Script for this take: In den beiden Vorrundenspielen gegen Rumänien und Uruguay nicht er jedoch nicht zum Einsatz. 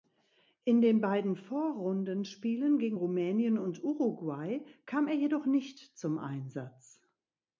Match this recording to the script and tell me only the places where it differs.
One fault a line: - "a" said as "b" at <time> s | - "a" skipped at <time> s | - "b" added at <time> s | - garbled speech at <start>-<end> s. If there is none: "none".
- "nicht" said as "kam" at 4.9 s